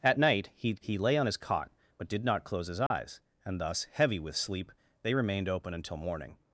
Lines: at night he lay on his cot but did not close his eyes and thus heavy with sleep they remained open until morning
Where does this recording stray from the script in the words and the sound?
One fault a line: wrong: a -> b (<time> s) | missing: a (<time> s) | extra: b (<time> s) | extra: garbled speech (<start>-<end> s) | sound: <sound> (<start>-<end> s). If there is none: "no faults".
extra: he (0.8 s)
sound: dropout (2.9-2.9 s)